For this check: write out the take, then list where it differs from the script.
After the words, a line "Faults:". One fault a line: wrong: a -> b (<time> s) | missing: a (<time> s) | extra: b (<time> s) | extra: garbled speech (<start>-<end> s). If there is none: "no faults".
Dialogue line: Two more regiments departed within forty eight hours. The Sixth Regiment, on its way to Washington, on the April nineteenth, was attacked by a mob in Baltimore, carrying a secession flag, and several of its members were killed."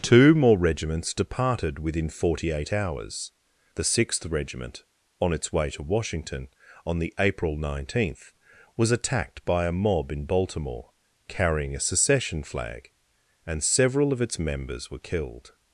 Two more regiments departed within forty eight hours. The Sixth Regiment, on its way to Washington, on the April nineteenth, was attacked by a mob in Baltimore, carrying a secession flag, and several of its members were killed."
Faults:
no faults